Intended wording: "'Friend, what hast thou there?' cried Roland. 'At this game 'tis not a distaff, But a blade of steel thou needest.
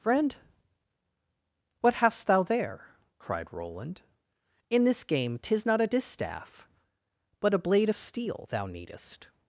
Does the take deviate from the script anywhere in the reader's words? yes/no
yes